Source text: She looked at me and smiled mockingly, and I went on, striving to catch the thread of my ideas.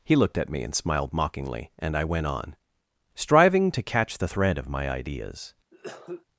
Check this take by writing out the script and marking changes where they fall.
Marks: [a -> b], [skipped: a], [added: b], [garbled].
[She -> He] looked at me and smiled mockingly, and I went on, striving to catch the thread of my ideas.